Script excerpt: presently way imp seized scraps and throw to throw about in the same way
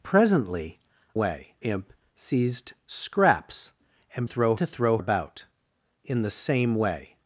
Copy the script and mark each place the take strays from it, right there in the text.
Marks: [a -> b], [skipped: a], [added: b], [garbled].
presently way imp seized scraps and throw to throw about in the same way